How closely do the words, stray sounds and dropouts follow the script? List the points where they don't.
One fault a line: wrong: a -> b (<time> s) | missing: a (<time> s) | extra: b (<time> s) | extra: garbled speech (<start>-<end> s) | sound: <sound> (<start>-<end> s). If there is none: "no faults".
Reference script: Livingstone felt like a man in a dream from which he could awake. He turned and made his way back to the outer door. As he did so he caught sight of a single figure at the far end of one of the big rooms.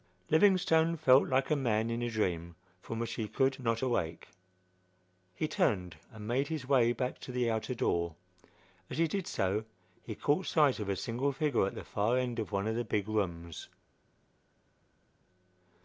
extra: not (3.6 s)